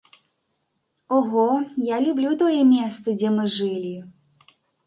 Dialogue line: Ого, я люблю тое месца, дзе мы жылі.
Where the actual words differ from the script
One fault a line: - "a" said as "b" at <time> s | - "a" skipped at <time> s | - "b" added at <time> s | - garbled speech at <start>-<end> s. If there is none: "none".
none